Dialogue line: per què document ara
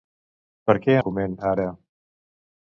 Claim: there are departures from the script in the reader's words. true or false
false